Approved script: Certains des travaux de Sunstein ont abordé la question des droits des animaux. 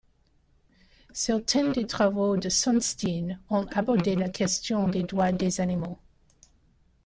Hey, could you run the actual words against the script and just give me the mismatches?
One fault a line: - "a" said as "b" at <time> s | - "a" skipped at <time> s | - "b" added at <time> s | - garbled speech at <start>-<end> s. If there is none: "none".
none